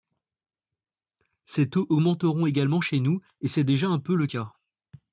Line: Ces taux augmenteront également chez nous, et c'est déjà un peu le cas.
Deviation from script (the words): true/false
false